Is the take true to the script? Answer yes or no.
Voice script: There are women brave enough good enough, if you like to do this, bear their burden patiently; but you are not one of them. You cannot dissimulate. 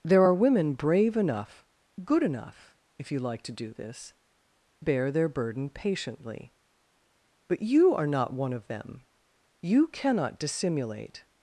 yes